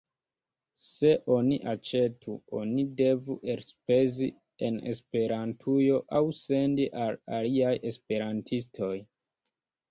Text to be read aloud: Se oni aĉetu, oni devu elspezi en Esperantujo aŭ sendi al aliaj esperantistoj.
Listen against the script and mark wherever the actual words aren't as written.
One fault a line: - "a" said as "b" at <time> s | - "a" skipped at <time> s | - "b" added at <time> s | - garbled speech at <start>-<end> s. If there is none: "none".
none